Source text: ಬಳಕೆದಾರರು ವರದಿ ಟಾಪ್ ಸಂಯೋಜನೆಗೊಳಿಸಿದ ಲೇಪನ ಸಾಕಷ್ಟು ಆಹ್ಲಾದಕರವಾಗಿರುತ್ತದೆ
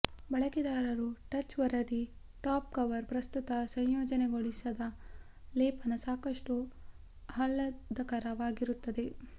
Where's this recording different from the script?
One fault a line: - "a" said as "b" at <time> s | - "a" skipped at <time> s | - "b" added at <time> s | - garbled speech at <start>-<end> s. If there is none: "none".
- "ಟಚ್" added at 1.3 s
- "ಕವರ್ ಪ್ರಸ್ತುತ" added at 2.7 s